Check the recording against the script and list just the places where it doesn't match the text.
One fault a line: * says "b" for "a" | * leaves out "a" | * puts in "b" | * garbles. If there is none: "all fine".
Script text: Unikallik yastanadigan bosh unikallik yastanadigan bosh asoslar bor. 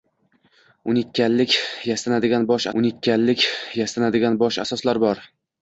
all fine